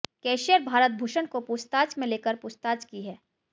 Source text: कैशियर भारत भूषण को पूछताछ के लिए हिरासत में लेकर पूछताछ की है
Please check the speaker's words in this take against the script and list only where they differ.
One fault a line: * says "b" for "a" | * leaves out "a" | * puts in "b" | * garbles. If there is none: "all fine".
* leaves out "के लिए हिरासत"